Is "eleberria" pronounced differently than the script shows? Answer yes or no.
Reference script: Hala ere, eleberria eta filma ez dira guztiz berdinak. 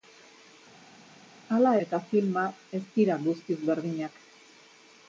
yes